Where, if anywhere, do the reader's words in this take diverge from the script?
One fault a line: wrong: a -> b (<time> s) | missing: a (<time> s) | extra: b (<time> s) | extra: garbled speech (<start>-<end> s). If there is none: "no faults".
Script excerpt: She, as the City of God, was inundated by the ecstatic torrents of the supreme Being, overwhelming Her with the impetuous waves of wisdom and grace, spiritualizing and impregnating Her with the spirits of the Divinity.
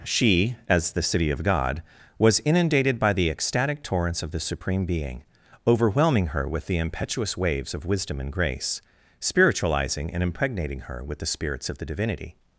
no faults